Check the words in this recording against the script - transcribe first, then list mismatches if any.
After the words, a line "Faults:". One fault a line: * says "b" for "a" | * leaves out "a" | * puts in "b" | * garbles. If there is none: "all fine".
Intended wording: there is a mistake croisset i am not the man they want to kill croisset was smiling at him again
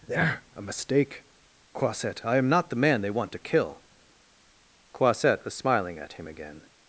there a mistake croisset i am not the man they want to kill croisset was smiling at him again
Faults:
* leaves out "is"